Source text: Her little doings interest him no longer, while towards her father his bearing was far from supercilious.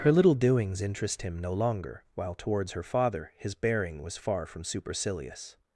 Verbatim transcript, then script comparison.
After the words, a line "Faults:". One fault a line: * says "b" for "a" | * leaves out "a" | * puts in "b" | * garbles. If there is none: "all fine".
Her little doings interest him no longer, while towards her father his bearing was far from supercilious.
Faults:
all fine